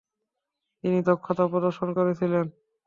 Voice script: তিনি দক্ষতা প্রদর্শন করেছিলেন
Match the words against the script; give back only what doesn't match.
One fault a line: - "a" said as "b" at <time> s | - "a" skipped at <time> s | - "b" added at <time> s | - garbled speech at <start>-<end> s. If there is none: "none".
none